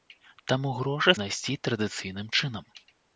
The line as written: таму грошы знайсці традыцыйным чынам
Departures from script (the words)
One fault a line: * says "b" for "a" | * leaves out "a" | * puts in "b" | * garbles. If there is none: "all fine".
all fine